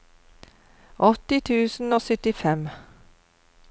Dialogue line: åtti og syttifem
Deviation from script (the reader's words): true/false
true